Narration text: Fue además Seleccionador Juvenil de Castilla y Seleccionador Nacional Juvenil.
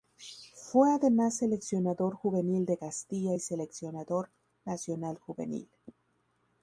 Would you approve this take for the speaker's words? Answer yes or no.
yes